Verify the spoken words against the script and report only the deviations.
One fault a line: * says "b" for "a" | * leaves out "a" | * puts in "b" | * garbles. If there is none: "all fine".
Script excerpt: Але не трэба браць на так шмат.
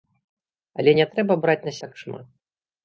all fine